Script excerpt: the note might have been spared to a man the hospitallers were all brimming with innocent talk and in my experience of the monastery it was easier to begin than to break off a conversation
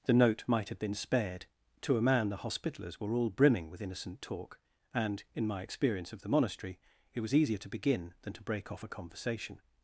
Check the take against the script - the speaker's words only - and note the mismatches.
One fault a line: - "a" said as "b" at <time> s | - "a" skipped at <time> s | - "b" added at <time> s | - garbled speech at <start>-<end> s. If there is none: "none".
none